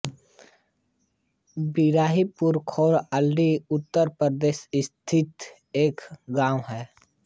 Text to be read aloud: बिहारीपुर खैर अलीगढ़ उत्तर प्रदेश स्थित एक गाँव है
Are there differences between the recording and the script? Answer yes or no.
no